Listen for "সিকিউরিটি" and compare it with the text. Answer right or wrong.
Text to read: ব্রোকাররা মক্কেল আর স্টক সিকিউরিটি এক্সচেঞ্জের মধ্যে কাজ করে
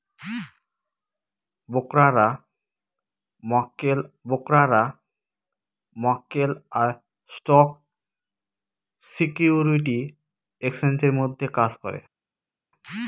right